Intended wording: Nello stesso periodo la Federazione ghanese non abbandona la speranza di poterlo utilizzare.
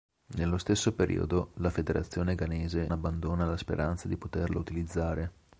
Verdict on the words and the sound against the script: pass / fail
fail